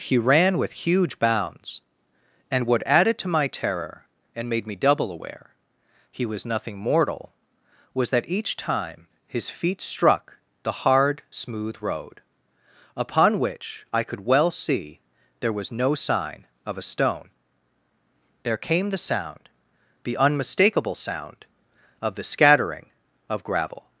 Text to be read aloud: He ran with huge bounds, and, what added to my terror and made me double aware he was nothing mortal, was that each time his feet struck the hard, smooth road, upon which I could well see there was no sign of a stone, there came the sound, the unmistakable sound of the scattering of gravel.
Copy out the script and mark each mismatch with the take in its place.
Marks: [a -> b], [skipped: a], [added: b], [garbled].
He ran with huge bounds, and, what added to my terror and made me double aware he was nothing mortal, was that each time his feet struck the hard, smooth road, upon which I could well see there was no sign of a stone, there came the sound, the unmistakable sound of the scattering of gravel.